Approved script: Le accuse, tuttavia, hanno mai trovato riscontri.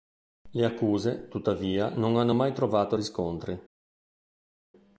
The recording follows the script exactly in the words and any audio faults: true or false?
false